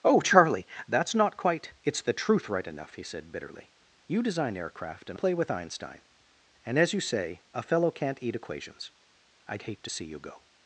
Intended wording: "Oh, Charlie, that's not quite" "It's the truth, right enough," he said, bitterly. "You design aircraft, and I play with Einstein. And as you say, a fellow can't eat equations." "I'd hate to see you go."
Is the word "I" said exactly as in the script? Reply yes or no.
no